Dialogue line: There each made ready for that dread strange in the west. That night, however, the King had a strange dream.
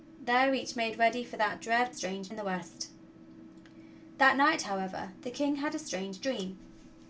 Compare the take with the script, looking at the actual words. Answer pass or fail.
pass